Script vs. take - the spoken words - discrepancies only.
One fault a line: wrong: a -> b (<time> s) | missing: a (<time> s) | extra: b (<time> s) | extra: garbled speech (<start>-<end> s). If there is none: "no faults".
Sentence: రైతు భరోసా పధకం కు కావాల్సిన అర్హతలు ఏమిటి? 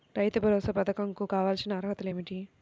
no faults